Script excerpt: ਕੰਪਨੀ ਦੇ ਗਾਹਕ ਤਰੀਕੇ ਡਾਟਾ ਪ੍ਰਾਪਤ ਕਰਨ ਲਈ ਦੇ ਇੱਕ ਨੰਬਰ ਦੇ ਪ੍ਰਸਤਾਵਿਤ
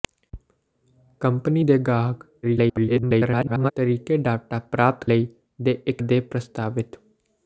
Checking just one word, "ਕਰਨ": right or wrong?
wrong